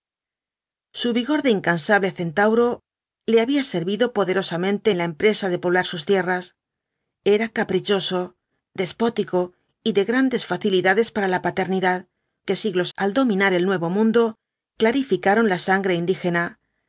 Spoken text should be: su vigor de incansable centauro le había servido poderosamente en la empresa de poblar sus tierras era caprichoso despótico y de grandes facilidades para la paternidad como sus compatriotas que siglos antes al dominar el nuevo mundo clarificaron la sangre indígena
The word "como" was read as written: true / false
false